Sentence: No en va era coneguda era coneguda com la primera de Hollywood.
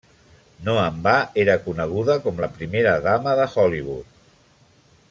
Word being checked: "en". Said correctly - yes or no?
yes